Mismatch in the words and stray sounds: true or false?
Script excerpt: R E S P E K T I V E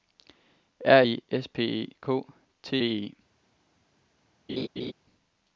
true